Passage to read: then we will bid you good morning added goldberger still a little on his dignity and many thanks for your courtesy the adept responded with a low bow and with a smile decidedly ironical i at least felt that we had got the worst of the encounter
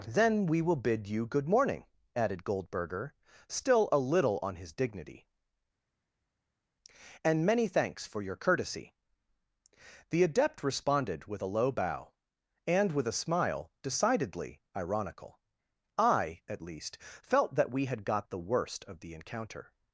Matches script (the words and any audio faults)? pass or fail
pass